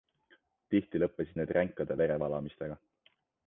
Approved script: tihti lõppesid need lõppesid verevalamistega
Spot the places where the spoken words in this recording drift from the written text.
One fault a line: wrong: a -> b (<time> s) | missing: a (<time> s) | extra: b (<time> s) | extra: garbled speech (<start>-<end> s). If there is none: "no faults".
wrong: lõppesid -> ränkade (1.6 s)